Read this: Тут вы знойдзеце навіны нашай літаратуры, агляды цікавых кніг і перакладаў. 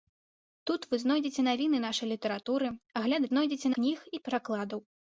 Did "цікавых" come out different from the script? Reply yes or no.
yes